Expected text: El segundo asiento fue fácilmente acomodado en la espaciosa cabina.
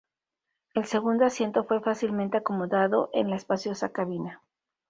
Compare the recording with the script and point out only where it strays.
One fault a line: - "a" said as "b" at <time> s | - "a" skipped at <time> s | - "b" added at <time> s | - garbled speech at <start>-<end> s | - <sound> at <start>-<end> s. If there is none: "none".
none